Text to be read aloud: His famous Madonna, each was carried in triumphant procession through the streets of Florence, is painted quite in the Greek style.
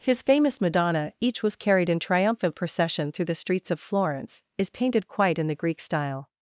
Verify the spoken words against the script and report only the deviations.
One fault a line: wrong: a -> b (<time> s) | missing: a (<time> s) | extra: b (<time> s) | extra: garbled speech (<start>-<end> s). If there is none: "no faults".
no faults